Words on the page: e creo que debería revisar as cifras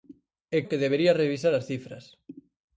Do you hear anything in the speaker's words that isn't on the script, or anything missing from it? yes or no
yes